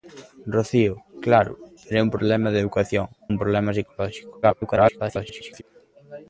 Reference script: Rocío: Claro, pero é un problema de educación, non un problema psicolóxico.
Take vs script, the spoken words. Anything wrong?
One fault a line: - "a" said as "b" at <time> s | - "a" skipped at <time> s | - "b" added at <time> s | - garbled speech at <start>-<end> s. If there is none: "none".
- "non" skipped at 3.1 s
- garbled speech at 4.4-5.6 s